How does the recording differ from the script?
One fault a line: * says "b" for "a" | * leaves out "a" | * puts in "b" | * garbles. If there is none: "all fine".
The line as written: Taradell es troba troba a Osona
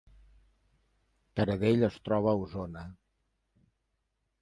* leaves out "troba"